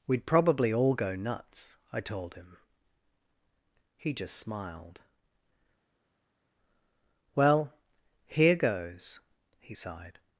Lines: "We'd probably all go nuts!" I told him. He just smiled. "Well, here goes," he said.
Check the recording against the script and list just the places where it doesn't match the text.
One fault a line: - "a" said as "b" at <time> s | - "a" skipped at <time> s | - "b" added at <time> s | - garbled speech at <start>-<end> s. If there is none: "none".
- "said" said as "sighed" at 9.7 s